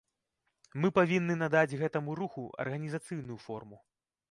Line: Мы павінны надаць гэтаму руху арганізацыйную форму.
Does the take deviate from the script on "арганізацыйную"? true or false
false